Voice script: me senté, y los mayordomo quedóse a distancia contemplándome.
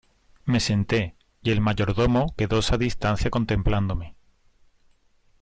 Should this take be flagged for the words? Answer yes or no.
yes